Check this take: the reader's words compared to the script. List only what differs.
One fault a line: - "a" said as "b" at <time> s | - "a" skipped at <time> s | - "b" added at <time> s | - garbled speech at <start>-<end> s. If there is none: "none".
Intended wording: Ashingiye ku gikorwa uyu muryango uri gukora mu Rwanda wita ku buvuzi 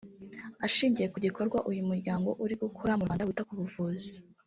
none